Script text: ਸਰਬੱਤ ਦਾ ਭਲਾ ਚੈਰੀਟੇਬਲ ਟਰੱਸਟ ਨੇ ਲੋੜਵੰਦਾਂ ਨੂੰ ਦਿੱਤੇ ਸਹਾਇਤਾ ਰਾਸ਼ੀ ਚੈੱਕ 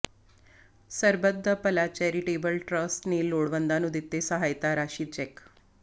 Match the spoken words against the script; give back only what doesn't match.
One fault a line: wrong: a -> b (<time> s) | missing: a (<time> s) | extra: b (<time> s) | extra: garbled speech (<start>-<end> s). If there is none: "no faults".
no faults